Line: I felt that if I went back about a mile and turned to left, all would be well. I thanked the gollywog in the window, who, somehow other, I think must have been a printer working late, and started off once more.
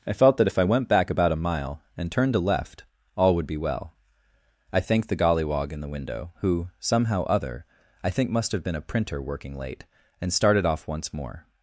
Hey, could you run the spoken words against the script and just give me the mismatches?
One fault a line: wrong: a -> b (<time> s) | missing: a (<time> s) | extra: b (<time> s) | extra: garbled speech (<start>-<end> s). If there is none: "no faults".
no faults